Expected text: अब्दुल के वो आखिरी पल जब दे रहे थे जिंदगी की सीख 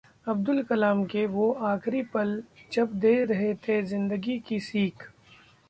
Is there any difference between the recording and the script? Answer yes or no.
yes